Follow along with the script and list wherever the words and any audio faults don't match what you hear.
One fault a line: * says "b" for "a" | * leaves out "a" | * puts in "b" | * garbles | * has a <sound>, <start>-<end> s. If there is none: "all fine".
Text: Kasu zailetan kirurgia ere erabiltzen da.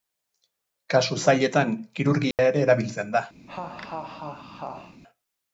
* has a dropout, 2.3-2.4 s
* has a laugh, 3.5-5.0 s